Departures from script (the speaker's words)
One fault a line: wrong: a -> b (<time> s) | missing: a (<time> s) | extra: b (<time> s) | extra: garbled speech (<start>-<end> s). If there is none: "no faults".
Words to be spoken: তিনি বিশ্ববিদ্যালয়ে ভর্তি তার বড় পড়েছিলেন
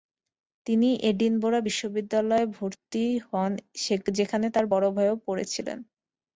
extra: এডিনবরা (1.1 s)
extra: হন যেখানে (3.3 s)
extra: ভাইও (4.9 s)